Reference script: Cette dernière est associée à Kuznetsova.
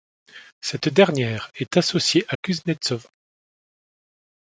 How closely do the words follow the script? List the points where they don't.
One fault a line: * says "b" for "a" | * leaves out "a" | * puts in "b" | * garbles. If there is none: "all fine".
all fine